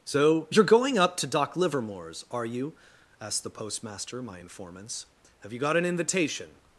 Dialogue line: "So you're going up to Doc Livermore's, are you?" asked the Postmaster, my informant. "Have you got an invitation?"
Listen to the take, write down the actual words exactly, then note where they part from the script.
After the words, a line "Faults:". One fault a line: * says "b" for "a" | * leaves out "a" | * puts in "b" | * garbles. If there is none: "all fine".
"So you're going up to Doc Livermore's, are you?" asked the Postmaster, my informants. "Have you got an invitation?"
Faults:
* says "informants" for "informant"